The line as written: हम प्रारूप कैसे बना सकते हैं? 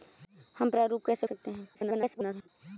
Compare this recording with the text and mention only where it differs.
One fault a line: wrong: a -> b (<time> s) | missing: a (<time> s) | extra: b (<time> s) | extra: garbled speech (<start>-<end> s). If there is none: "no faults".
missing: बना (1.3 s)
extra: garbled speech (1.7-2.5 s)